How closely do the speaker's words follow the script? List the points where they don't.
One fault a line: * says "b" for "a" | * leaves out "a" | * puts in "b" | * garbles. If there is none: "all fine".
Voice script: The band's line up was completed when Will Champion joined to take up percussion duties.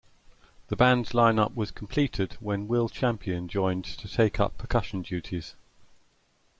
all fine